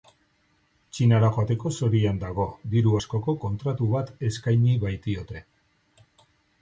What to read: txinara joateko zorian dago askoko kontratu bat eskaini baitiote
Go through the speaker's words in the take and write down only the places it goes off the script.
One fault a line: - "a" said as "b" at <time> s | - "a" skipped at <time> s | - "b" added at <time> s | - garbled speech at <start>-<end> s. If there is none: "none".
- "diru" added at 2.7 s